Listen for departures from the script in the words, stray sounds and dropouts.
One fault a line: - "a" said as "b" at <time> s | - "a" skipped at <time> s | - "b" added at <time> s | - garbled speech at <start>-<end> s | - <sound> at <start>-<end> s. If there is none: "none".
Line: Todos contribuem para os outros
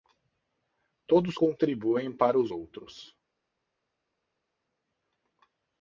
none